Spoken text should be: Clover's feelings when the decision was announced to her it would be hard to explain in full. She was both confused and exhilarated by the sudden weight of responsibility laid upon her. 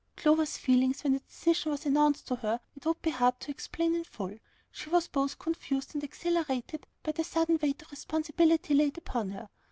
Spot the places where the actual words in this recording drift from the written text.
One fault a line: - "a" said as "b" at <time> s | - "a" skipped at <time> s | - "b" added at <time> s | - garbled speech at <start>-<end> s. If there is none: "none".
none